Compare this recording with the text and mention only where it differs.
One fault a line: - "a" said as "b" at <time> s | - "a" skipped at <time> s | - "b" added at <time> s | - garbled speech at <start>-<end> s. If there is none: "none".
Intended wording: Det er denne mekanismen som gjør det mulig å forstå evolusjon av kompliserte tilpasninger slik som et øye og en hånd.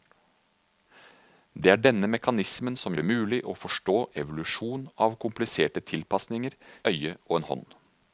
- "gjør" skipped at 3.0 s
- "slik som et" skipped at 6.6 s